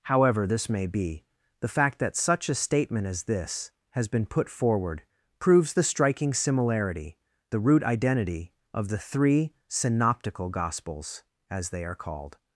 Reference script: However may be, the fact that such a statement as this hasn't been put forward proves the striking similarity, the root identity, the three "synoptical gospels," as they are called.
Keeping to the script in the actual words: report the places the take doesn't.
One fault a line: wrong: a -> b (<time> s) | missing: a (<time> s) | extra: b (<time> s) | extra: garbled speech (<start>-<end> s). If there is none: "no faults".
extra: this (0.5 s)
wrong: hasn't -> has (3.9 s)
extra: of (8.7 s)